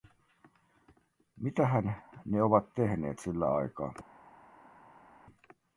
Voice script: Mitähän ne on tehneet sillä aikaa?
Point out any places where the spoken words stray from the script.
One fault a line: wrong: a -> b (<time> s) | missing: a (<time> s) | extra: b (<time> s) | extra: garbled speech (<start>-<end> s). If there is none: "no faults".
wrong: on -> ovat (2.4 s)